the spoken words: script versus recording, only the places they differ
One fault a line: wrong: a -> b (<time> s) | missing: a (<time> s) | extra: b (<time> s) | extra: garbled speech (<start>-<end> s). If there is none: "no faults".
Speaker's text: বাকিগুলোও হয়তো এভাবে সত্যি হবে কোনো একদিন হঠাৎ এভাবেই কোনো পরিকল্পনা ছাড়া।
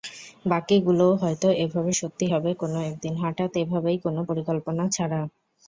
no faults